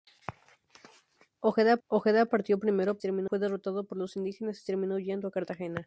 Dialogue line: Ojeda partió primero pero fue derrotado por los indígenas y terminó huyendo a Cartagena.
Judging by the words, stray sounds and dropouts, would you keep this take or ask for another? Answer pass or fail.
fail